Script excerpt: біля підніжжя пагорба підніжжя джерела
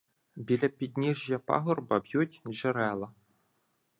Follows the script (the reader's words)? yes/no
no